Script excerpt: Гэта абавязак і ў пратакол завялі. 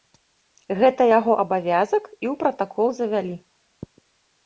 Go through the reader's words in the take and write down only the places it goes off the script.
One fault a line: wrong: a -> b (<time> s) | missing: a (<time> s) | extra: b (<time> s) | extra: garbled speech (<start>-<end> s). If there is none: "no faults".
extra: яго (1.2 s)